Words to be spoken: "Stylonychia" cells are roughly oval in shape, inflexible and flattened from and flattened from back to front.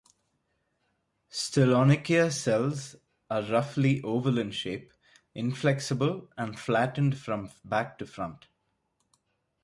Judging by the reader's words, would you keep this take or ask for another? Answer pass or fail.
fail